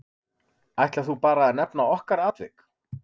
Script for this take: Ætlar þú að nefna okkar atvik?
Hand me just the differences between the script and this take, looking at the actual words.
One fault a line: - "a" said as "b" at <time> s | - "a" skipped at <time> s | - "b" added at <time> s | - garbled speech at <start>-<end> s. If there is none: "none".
- "bara" added at 1.2 s